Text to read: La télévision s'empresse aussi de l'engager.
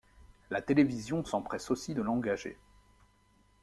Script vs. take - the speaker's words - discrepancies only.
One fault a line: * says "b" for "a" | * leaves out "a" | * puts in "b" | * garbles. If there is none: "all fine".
all fine